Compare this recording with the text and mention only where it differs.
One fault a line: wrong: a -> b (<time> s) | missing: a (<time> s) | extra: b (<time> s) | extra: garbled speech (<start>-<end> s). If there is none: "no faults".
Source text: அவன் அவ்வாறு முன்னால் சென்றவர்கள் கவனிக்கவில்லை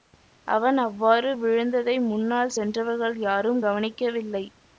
extra: விழுந்ததை (1.4 s)
extra: யாரும் (3.2 s)